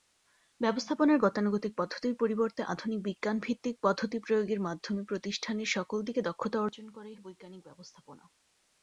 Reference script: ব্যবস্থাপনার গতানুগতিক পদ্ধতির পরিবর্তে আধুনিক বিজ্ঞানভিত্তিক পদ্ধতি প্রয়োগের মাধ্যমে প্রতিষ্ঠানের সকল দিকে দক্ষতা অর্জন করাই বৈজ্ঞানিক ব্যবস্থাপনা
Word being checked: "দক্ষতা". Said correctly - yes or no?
yes